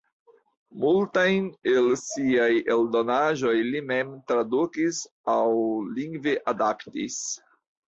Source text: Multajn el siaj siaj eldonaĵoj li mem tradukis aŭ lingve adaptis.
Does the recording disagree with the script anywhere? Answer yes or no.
yes